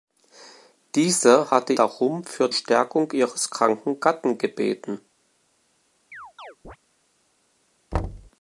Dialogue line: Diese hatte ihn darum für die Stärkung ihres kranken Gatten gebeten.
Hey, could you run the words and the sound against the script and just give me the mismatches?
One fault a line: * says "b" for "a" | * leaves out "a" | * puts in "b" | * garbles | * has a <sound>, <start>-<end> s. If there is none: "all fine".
* leaves out "ihn"
* leaves out "die"
* has a chirp, 6.1-6.8 s
* has a thud, 7.9-8.3 s